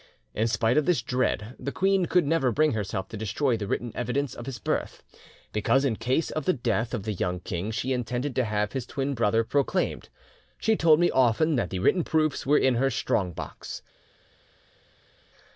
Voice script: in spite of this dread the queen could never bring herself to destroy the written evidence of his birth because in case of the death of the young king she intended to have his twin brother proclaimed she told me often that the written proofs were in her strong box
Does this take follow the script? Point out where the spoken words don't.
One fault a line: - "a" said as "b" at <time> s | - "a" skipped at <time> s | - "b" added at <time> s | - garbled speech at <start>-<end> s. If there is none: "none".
none